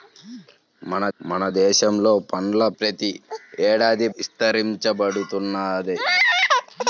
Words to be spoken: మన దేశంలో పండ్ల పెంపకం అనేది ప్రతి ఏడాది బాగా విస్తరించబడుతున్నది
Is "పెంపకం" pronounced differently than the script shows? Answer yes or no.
yes